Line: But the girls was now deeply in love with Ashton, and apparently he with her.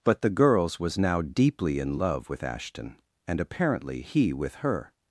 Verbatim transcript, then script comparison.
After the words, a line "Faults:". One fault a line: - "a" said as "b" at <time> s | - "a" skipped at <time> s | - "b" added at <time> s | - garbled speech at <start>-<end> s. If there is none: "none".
But the girls was now deeply in love with Ashton, and apparently he with her.
Faults:
none